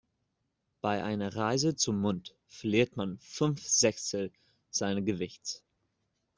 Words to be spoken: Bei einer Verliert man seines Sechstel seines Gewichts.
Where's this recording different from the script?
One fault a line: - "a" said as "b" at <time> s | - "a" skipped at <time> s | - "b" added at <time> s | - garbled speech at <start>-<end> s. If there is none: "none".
- "Reise zum Mond" added at 1.4 s
- "seines" said as "fünf" at 3.2 s